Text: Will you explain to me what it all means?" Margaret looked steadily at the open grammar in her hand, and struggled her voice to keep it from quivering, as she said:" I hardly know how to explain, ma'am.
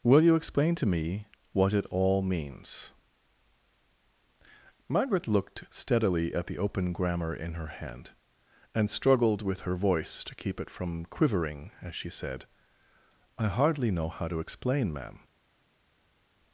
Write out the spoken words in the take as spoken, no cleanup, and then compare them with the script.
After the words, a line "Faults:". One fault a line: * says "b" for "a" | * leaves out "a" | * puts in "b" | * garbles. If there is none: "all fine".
Will you explain to me what it all means?" Margaret looked steadily at the open grammar in her hand, and struggled with her voice to keep it from quivering, as she said:" I hardly know how to explain, ma'am.
Faults:
* puts in "with"